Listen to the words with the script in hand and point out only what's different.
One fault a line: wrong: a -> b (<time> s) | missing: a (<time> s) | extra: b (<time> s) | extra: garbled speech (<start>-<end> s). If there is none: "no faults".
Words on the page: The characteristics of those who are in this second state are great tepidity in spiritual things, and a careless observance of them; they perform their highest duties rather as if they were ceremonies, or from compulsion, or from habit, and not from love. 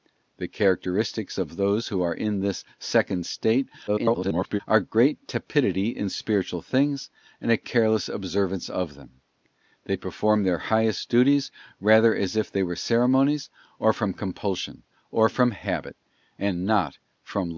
extra: garbled speech (3.9-4.6 s)